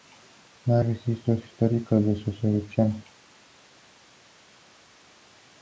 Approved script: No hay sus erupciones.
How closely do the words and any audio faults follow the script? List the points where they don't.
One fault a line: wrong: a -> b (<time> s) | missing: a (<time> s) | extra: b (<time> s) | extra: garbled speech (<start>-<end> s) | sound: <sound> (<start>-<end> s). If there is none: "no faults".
extra: registros históricos de (0.8 s)